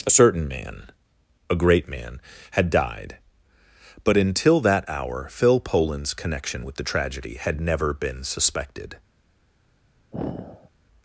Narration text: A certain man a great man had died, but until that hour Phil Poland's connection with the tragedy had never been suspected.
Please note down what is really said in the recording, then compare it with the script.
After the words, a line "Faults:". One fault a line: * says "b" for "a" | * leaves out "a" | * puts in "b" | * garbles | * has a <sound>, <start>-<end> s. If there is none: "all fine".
A certain man a great man had died, but until that hour Phil Poland's connection with the tragedy had never been suspected.
Faults:
* has a sigh, 10.1-10.7 s